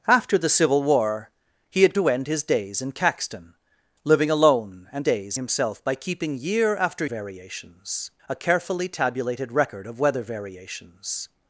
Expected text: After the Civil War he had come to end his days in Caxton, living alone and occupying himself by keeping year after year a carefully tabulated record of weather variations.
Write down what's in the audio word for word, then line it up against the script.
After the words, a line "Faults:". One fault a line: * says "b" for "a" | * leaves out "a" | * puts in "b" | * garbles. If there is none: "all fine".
After the Civil War he had to end his days in Caxton, living alone and days himself by keeping year after variations a carefully tabulated record of weather variations.
Faults:
* leaves out "come"
* says "days" for "occupying"
* says "variations" for "year"